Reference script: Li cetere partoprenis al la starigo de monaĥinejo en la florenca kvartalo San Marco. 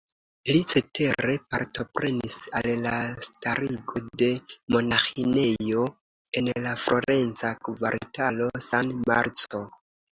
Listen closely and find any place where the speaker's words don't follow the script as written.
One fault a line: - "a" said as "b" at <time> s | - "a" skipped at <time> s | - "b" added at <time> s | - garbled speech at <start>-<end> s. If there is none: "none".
none